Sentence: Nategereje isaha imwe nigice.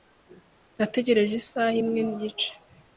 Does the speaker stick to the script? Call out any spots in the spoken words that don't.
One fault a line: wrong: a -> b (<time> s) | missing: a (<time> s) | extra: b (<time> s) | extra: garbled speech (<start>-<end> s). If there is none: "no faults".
no faults